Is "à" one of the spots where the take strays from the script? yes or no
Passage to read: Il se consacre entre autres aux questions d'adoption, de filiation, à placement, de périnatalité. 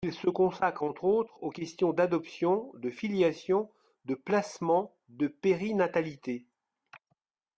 yes